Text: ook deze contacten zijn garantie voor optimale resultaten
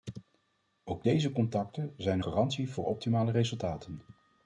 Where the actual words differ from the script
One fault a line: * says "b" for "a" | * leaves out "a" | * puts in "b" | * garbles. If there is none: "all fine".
all fine